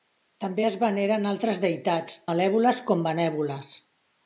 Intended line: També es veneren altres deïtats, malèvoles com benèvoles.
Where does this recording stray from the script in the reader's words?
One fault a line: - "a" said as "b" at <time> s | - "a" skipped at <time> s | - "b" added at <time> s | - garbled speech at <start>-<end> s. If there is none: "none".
none